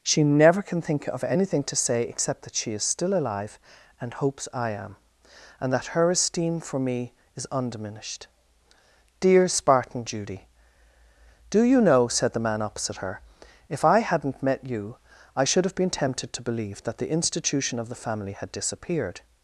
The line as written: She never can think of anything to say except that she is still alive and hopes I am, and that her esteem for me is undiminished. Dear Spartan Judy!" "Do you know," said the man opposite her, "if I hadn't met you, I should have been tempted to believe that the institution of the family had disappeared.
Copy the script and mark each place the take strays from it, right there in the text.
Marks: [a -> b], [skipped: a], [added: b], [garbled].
She never can think of anything to say except that she is still alive and hopes I am, and that her esteem for me is undiminished. Dear Spartan Judy!" "Do you know," said the man opposite her, "if I hadn't met you, I should have been tempted to believe that the institution of the family had disappeared.